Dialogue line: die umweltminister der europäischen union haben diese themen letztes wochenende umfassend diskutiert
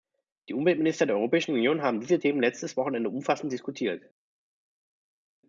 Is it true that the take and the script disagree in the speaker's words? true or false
false